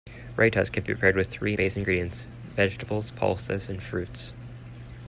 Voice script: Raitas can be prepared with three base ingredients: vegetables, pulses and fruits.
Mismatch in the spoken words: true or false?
false